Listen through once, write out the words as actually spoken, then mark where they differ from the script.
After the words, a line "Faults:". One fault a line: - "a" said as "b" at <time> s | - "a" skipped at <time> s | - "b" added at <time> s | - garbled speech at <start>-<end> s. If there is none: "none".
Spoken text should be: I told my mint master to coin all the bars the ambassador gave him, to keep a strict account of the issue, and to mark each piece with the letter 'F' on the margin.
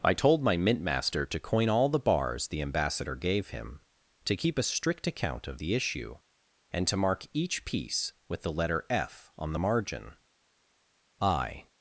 I told my mint master to coin all the bars the ambassador gave him, to keep a strict account of the issue, and to mark each piece with the letter 'F' on the margin. I
Faults:
- "I" added at 11.2 s